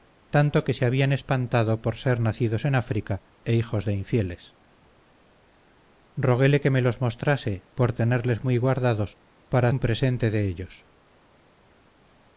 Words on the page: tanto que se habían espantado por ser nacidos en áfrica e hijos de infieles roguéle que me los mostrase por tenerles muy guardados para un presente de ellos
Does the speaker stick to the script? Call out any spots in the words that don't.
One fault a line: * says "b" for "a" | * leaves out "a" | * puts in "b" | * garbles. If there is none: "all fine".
all fine